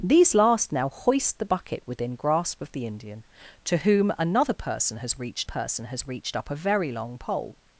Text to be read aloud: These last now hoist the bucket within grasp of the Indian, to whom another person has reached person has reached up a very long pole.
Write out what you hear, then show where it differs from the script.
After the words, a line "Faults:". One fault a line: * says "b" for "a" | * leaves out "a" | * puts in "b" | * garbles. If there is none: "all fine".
These last now hoist the bucket within grasp of the Indian, to whom another person has reached person has reached up a very long pole.
Faults:
all fine